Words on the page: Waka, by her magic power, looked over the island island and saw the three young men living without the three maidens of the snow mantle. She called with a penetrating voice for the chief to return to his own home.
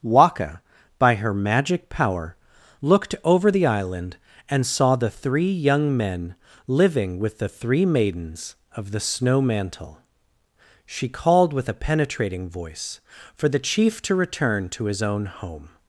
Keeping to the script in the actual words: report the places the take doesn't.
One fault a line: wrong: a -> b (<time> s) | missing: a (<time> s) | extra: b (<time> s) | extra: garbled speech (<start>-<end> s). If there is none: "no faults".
missing: island (4.2 s)
wrong: without -> with (7.2 s)